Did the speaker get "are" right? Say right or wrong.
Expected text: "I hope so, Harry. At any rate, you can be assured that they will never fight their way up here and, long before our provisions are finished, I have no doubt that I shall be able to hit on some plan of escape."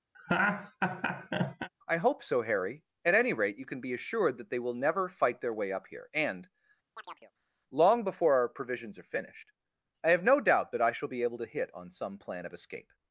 right